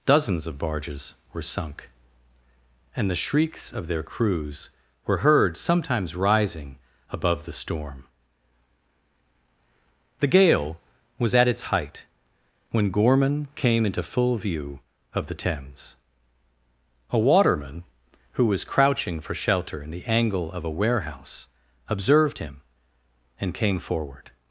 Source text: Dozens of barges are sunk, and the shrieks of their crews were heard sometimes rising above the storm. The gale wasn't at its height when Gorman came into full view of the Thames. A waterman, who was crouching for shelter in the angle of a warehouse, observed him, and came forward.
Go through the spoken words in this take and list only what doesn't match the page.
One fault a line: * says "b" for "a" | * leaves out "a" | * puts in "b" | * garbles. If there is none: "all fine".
* says "were" for "are"
* says "was" for "wasn't"